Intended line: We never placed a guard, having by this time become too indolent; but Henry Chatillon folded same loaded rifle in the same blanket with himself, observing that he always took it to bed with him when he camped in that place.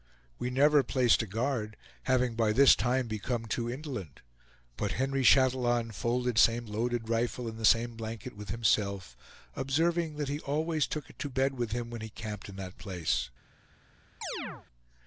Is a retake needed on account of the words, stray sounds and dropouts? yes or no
yes